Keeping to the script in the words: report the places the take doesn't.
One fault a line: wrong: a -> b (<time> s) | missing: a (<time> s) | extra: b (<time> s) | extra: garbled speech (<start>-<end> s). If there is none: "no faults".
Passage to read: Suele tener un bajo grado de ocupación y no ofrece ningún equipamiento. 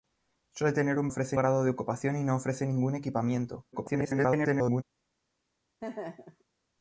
wrong: bajo -> ofrece (1.1 s)
extra: garbled speech (3.7-4.8 s)